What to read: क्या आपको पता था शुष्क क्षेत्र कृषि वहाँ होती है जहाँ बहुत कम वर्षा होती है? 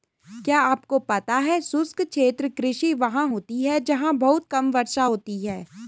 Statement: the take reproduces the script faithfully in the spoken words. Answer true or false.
false